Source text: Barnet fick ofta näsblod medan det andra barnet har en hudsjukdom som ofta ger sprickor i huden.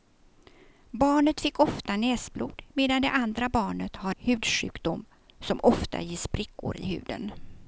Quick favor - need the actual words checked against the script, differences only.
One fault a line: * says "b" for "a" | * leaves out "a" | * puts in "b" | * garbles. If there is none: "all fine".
* leaves out "en"